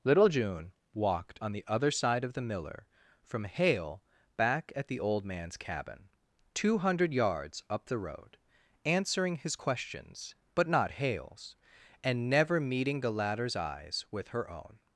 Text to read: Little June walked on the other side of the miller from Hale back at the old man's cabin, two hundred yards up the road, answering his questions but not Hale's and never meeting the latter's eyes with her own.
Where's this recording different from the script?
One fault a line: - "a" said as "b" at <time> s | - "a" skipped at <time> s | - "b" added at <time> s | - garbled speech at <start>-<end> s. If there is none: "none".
none